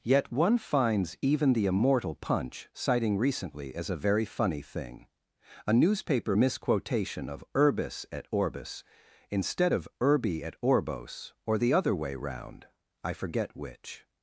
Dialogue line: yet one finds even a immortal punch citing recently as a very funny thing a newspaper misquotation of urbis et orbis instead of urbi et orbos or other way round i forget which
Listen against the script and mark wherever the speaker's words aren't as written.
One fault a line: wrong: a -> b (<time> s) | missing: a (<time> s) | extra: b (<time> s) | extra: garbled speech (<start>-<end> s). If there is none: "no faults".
wrong: a -> the (1.5 s)
extra: the (11.6 s)